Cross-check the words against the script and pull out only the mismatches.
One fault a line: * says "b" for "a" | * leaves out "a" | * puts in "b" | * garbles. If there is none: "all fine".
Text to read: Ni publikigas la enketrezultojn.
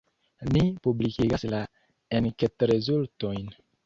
all fine